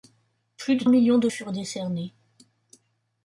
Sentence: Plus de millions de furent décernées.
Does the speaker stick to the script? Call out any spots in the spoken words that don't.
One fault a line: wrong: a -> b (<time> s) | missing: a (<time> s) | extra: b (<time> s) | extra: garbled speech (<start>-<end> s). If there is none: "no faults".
no faults